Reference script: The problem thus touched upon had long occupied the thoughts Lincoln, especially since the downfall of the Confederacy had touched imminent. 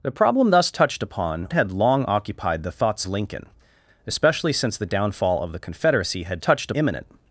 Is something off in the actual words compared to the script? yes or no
no